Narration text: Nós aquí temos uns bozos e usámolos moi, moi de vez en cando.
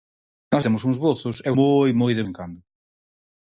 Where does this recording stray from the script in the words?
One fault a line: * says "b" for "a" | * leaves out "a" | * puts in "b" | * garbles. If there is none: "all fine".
* leaves out "aquí"
* leaves out "usámolos"
* leaves out "vez"